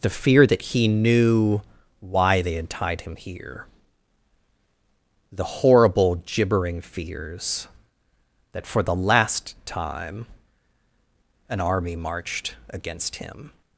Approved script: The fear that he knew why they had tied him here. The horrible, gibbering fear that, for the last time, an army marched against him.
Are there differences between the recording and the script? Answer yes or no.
yes